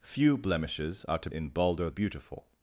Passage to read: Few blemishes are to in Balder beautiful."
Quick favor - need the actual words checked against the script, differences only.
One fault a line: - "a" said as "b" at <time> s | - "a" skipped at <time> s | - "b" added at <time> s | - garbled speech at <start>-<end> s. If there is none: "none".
none